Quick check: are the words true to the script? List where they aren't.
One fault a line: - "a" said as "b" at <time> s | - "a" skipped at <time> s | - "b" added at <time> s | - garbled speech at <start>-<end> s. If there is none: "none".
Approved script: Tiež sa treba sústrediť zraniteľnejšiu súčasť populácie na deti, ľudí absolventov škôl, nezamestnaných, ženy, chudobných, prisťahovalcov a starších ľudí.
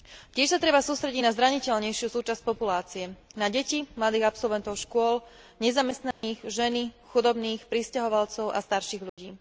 - "na" added at 1.2 s
- "ľudí" said as "mladých" at 3.9 s